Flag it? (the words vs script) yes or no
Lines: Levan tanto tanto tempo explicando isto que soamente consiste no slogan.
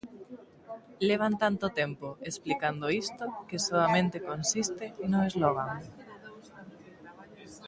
yes